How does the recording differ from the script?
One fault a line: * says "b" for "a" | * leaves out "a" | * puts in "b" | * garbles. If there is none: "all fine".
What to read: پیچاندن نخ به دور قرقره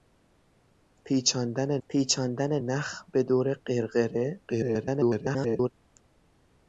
* puts in "پیچاندن"
* garbles